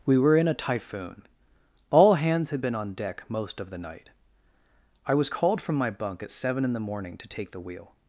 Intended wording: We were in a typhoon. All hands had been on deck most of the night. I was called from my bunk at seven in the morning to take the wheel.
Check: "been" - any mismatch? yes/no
no